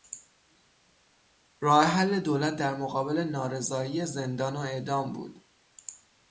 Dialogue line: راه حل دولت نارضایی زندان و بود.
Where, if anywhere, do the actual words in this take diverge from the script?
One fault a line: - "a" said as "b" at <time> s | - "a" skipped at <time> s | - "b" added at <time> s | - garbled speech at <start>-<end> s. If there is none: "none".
- "در مقابل" added at 2.5 s
- "اعدام" added at 4.6 s